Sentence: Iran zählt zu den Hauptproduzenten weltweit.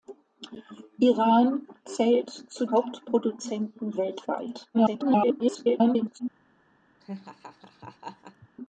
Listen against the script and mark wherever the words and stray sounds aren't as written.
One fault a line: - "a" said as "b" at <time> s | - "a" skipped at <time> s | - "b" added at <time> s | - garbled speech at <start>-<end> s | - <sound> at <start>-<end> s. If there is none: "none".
- "den" skipped at 2.6 s
- garbled speech at 4.7-6.2 s
- laugh at 7.0-8.5 s